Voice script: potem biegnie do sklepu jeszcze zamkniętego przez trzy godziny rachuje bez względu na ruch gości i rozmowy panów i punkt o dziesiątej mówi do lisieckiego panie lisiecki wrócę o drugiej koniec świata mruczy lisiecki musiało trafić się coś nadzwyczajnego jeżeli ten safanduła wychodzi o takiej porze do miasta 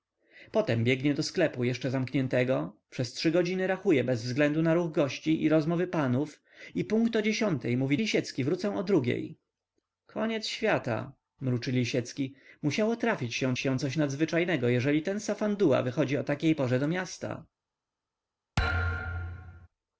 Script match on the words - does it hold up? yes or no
no